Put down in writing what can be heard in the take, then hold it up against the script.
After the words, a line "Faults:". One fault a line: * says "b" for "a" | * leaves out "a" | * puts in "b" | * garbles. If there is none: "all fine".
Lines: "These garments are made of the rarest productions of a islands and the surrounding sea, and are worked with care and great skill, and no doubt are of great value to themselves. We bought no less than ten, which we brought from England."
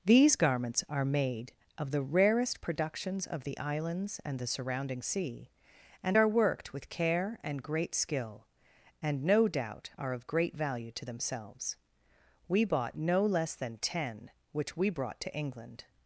"These garments are made of the rarest productions of the islands and the surrounding sea, and are worked with care and great skill, and no doubt are of great value to themselves. We bought no less than ten, which we brought to England."
Faults:
* says "the" for "a"
* says "to" for "from"